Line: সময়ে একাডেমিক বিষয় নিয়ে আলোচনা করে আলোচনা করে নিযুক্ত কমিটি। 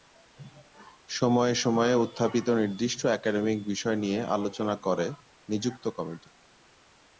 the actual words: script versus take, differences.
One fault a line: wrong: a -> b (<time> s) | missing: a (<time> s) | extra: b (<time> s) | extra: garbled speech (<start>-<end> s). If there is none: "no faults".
extra: সময়ে উত্থাপিত নির্দিষ্ট (1.6 s)
missing: আলোচনা করে (5.1 s)